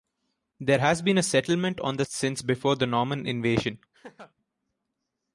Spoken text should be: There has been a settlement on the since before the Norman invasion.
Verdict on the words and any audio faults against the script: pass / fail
fail